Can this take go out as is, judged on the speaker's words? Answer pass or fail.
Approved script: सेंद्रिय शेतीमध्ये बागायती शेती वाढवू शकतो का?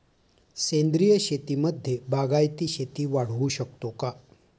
pass